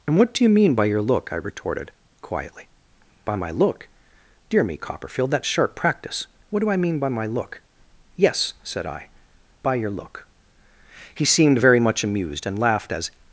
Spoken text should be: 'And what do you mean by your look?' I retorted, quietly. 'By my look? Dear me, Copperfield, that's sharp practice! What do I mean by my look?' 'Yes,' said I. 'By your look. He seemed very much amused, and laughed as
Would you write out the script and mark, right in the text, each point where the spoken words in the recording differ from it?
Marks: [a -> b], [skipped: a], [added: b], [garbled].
'And what do you mean by your look?' I retorted, quietly. 'By my look? Dear me, Copperfield, that's sharp practice! What do I mean by my look?' 'Yes,' said I. 'By your look. He seemed very much amused, and laughed as